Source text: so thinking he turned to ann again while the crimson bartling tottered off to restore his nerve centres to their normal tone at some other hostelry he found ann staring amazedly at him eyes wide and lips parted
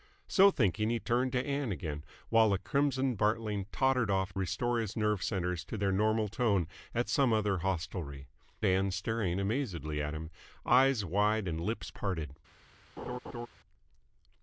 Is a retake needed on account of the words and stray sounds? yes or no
yes